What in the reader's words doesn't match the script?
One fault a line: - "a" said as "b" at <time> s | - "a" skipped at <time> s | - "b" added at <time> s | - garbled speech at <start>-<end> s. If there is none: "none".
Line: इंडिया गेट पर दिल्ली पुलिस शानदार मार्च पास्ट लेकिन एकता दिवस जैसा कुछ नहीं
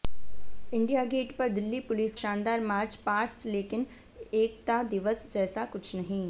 none